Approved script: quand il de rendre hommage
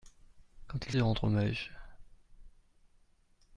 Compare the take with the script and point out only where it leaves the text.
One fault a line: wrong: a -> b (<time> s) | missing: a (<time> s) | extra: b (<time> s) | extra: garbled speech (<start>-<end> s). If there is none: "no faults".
no faults